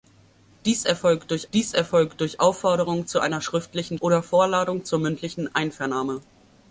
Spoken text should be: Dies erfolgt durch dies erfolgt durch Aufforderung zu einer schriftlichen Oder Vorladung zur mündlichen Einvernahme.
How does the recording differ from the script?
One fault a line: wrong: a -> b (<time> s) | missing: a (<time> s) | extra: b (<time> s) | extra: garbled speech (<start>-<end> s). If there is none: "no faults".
no faults